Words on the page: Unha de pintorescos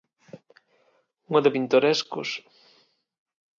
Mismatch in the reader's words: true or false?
false